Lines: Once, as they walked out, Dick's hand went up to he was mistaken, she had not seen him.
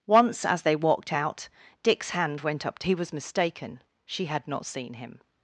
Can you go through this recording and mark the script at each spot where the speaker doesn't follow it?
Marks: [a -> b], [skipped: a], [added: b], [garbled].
Once, as they walked out, Dick's hand went up to he was mistaken, she had not seen him.